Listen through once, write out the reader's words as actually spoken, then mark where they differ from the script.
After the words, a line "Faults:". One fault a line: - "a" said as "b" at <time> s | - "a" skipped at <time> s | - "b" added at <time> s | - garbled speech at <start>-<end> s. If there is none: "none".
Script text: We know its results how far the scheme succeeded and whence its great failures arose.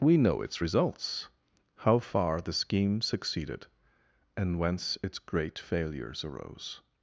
We know its results how far the scheme succeeded and whence its great failures arose.
Faults:
none